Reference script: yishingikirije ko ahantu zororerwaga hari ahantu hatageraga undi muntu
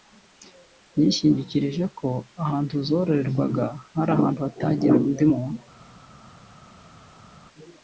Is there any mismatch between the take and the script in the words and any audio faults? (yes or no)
no